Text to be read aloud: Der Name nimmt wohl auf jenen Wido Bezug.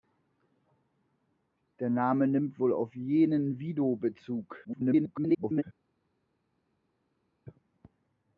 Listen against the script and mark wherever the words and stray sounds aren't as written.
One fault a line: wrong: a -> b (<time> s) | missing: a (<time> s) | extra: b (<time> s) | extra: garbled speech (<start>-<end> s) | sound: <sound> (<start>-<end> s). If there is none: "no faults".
extra: garbled speech (4.6-5.6 s)